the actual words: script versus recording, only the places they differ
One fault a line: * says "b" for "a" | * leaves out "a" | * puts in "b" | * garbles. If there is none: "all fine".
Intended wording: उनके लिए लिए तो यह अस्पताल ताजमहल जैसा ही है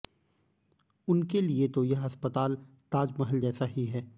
* leaves out "लिए"